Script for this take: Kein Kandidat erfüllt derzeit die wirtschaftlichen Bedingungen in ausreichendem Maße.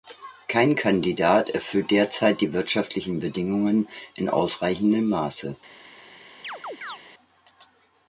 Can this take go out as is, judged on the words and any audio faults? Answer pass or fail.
fail